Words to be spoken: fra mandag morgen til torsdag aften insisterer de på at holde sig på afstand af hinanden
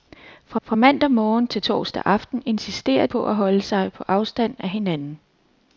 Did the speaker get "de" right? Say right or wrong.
wrong